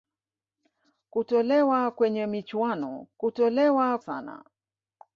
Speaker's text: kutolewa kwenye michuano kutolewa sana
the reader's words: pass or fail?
pass